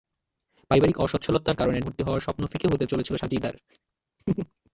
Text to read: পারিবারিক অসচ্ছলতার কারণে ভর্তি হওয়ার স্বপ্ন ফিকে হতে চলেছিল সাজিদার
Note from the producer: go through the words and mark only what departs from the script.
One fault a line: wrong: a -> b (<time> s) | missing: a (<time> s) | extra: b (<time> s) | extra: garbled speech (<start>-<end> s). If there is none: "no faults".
no faults